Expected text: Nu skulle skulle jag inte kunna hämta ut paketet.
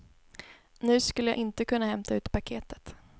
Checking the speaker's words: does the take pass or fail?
fail